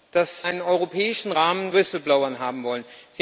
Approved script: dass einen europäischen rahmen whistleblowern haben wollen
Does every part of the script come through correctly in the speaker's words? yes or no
yes